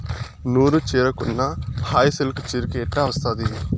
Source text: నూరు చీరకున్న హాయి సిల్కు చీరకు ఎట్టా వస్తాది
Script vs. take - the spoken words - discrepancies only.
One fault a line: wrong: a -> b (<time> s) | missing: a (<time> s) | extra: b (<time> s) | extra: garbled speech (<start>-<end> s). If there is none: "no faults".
no faults